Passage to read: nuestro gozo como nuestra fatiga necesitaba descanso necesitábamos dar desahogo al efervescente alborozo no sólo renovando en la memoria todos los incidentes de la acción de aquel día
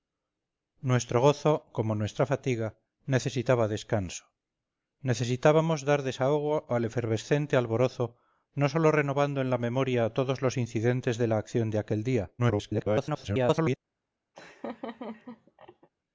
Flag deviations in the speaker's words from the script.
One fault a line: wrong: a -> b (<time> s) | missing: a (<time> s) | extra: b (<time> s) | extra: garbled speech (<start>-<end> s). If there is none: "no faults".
extra: garbled speech (12.4-13.8 s)